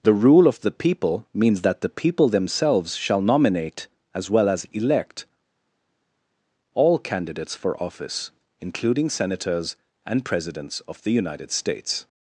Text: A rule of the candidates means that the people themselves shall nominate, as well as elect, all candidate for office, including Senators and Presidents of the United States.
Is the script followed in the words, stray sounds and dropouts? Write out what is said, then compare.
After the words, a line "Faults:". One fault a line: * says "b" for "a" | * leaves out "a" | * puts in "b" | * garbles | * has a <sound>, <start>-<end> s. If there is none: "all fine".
The rule of the people means that the people themselves shall nominate, as well as elect, all candidates for office, including Senators and Presidents of the United States.
Faults:
* says "The" for "A"
* says "people" for "candidates"
* says "candidates" for "candidate"